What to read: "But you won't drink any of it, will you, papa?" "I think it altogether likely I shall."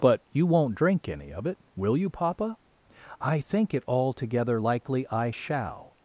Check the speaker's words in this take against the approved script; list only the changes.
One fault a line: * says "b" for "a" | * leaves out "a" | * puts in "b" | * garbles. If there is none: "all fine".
all fine